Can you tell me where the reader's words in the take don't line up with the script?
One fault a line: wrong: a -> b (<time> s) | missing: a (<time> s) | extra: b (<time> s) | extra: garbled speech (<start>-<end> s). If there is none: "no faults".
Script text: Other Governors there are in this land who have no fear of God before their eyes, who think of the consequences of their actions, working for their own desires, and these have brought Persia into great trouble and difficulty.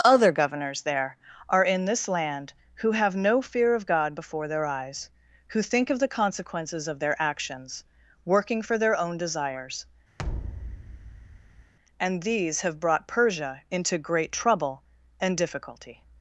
no faults